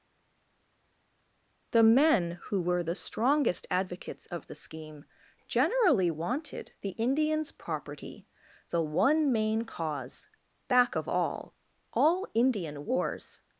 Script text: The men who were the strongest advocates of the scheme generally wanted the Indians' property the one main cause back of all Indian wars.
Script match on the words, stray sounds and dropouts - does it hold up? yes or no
no